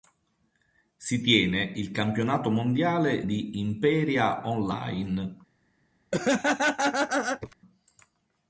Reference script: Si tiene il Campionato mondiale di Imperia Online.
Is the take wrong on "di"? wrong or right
right